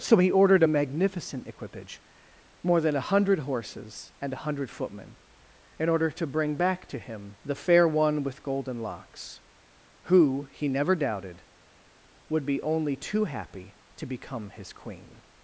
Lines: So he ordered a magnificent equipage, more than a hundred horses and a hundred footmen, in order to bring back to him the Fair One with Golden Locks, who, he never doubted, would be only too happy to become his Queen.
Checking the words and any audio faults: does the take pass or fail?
pass